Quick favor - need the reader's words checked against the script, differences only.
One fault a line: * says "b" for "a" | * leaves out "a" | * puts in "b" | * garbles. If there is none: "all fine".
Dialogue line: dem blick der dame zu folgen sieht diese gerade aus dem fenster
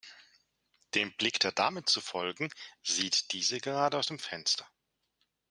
all fine